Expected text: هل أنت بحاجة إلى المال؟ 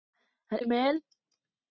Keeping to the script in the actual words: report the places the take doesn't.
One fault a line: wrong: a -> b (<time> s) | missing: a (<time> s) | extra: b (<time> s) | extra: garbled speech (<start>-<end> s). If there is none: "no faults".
missing: أنت بحاجة إلى (0.6 s)